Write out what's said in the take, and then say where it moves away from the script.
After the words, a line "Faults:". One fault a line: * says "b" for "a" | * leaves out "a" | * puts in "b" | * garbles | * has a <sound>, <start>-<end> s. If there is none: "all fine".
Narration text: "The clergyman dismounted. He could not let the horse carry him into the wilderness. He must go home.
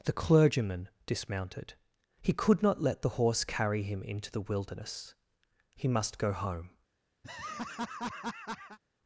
"The clergyman dismounted. He could not let the horse carry him into the wilderness. He must go home.
Faults:
* has a laugh, 7.2-8.8 s